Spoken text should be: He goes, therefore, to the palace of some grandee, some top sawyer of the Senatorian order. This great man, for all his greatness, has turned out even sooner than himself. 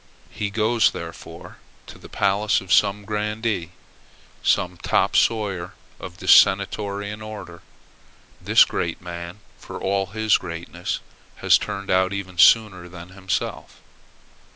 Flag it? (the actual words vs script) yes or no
no